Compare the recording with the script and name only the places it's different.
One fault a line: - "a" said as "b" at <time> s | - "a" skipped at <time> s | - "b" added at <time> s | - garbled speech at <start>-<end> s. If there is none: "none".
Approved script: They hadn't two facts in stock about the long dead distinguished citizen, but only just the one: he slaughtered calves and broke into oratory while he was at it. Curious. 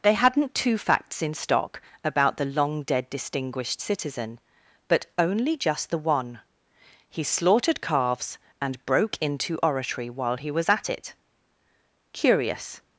none